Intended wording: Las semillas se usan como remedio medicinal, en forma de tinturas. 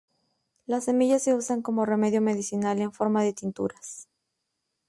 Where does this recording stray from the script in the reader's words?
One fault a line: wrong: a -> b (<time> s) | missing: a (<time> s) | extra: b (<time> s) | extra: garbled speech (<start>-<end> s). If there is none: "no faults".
no faults